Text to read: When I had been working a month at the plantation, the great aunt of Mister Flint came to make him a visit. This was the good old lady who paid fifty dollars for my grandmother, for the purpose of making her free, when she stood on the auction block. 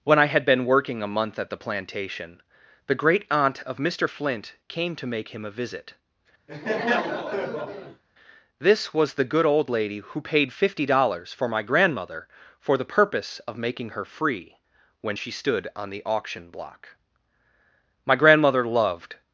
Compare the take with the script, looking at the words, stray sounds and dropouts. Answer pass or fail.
fail